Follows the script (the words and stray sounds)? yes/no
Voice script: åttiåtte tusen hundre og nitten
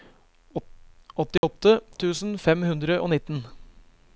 no